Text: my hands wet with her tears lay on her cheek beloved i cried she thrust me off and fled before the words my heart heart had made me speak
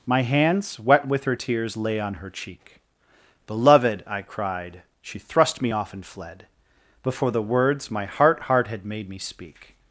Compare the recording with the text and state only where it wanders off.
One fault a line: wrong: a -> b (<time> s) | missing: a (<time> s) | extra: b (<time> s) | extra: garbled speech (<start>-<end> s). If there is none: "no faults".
no faults